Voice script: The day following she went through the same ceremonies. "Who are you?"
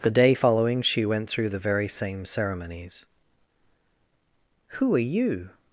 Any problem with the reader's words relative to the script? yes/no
yes